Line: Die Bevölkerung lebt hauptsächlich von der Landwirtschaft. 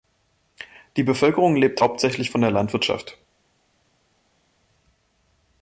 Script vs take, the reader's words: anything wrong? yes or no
no